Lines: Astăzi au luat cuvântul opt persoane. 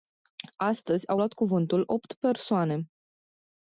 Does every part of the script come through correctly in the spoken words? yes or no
yes